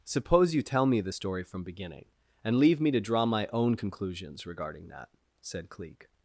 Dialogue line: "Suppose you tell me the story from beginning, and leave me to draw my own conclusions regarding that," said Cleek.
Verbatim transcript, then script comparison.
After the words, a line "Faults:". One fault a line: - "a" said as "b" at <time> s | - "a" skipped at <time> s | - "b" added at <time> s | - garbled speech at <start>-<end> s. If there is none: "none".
"Suppose you tell me the story from beginning, and leave me to draw my own conclusions regarding that," said Cleek.
Faults:
none